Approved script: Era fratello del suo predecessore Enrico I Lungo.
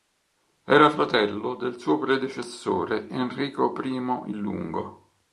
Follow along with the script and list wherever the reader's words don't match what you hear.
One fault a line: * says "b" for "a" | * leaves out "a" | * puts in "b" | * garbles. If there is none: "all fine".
all fine